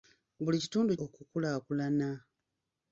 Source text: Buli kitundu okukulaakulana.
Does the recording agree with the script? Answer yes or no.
yes